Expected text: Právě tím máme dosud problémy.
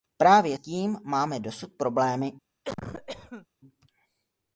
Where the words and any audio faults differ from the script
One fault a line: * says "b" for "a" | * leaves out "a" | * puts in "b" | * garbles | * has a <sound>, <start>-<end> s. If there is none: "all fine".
* has a cough, 2.6-3.5 s